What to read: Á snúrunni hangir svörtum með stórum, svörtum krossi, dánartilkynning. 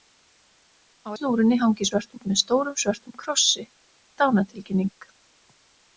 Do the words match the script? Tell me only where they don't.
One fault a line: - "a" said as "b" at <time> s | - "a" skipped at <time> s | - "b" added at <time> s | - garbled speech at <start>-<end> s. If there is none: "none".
none